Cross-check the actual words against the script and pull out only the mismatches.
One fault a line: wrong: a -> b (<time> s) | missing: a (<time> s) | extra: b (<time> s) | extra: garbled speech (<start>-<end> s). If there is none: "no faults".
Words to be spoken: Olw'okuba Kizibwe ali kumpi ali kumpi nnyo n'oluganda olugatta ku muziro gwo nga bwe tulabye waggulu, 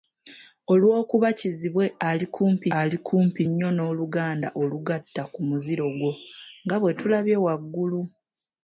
no faults